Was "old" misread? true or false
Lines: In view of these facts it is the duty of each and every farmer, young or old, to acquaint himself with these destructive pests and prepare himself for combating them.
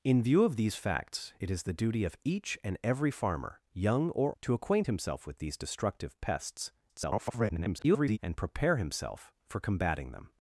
true